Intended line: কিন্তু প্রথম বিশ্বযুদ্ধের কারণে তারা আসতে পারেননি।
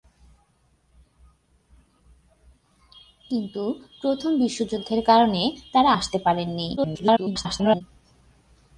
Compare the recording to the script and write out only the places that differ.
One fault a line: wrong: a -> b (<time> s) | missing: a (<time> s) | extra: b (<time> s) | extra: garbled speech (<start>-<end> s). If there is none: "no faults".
extra: garbled speech (6.8-7.8 s)